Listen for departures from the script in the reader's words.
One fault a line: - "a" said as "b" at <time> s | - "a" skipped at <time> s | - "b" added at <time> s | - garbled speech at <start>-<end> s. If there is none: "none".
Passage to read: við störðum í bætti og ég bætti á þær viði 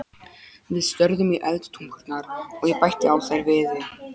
- "bætti" said as "eldtungurnar" at 1.5 s